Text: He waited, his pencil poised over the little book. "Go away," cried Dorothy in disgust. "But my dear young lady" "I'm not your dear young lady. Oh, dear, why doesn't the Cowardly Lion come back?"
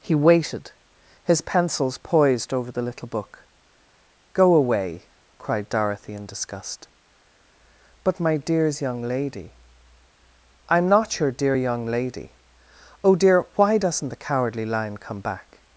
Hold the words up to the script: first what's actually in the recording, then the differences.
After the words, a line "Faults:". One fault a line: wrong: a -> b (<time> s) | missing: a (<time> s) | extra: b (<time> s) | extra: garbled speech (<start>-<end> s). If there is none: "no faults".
He waited, his pencils poised over the little book. "Go away," cried Dorothy in disgust. "But my dears young lady" "I'm not your dear young lady. Oh, dear, why doesn't the Cowardly Lion come back?"
Faults:
wrong: pencil -> pencils (1.4 s)
wrong: dear -> dears (8.4 s)